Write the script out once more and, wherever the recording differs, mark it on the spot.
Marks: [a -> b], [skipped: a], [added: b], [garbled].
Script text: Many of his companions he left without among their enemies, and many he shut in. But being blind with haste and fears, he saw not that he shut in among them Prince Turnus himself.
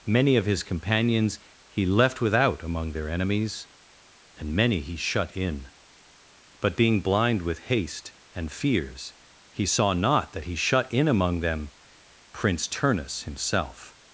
Many of his companions he left without among their enemies, and many he shut in. But being blind with haste and fears, he saw not that he shut in among them Prince Turnus himself.